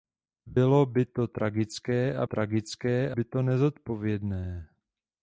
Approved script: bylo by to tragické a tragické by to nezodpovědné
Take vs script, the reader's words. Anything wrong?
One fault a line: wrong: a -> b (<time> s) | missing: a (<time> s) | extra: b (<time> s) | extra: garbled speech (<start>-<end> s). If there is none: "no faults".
no faults